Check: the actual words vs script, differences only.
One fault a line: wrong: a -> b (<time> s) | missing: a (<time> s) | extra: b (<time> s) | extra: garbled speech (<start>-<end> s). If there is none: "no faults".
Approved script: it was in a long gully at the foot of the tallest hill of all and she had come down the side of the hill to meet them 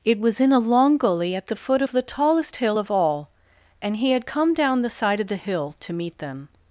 wrong: she -> he (4.0 s)